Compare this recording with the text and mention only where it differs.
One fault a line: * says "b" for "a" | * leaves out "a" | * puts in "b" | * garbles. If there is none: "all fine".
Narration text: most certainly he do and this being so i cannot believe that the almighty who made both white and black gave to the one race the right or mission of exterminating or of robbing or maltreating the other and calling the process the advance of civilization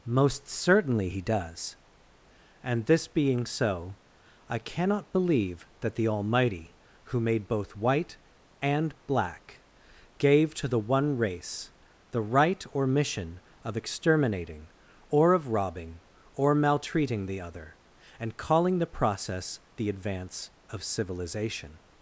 * says "does" for "do"